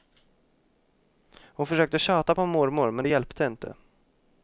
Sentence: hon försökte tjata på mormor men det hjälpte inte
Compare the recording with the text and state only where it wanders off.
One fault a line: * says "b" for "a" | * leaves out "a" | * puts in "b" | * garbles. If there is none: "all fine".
all fine